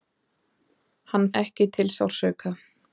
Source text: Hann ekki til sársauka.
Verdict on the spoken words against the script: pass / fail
pass